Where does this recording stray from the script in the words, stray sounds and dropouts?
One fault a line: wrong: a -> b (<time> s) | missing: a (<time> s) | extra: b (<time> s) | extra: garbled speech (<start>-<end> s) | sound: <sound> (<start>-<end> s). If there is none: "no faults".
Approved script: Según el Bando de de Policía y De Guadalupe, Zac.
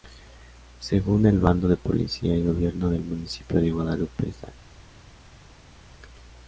missing: de (1.8 s)
extra: Gobierno del Municipio (2.4 s)